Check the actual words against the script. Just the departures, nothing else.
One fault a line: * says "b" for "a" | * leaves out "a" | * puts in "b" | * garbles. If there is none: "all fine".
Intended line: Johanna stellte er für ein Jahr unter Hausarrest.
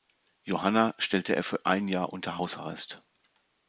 all fine